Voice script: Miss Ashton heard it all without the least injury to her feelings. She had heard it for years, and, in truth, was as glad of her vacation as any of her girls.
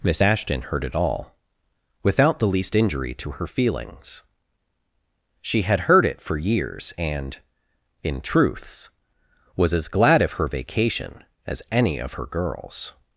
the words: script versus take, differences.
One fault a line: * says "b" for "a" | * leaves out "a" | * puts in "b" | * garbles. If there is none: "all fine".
* says "truths" for "truth"